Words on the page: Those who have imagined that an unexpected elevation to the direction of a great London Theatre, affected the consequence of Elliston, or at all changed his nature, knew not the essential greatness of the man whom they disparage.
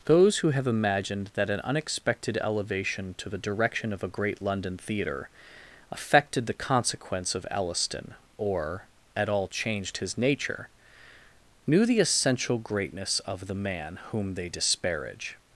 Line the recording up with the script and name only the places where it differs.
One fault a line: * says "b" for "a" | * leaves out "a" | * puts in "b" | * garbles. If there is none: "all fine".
* leaves out "not"